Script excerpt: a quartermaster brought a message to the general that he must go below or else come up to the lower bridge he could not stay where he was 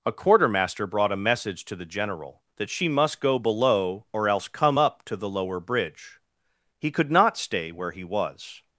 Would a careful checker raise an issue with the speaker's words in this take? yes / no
yes